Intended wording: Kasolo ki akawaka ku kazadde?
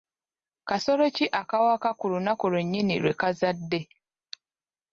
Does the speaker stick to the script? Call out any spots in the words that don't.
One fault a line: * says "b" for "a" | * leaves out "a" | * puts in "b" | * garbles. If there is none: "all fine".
* puts in "lunaku lwennyini lwe"